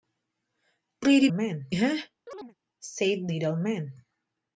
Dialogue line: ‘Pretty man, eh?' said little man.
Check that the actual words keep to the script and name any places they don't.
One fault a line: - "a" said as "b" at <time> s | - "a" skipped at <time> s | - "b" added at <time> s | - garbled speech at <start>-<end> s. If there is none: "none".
none